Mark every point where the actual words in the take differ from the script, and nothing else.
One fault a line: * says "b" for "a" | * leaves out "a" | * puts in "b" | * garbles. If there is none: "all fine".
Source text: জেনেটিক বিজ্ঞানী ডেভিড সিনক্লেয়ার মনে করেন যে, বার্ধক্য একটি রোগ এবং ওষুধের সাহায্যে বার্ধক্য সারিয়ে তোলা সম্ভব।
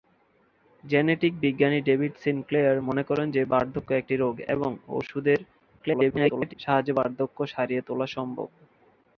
* garbles